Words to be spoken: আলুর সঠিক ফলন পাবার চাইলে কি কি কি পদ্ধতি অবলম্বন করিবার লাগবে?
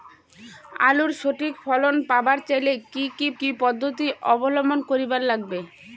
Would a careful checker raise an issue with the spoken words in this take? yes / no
no